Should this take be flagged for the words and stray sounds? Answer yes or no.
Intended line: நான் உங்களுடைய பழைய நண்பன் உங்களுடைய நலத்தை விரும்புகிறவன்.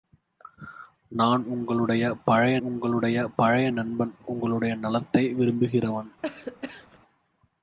yes